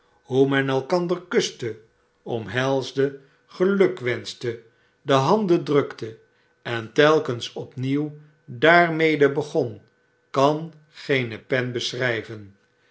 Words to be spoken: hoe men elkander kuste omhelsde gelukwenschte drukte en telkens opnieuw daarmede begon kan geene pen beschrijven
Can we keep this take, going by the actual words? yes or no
no